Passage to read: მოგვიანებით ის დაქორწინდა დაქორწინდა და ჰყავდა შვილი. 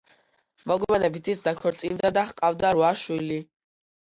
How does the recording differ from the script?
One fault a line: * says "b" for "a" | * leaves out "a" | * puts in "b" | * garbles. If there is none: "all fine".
* leaves out "დაქორწინდა"
* puts in "რვა"